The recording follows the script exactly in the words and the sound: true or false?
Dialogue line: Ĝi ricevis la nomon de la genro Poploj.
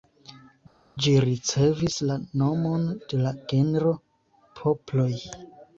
true